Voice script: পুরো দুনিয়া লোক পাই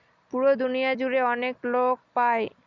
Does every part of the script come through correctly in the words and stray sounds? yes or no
no